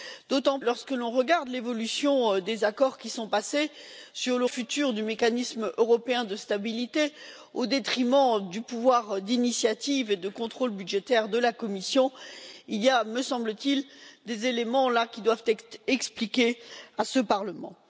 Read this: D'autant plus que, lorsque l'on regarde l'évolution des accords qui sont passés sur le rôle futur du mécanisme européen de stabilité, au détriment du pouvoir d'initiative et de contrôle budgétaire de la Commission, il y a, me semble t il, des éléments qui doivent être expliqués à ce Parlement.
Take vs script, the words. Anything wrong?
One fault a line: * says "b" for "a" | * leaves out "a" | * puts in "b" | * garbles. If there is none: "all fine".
* leaves out "plus que"
* leaves out "rôle"